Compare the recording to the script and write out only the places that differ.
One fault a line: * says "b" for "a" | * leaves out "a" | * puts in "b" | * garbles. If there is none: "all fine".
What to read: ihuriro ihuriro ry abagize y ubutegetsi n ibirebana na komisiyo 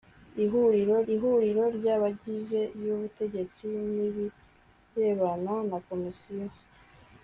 all fine